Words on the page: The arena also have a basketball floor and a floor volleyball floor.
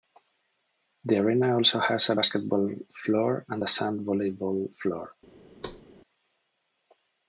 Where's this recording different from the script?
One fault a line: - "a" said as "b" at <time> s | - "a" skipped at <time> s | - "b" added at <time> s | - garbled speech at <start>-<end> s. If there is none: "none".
- "have" said as "has" at 1.8 s
- "floor" said as "sand" at 3.7 s